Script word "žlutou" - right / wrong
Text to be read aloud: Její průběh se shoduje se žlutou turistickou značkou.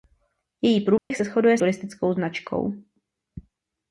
wrong